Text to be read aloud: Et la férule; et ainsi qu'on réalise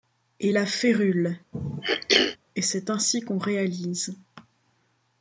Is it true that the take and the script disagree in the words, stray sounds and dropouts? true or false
true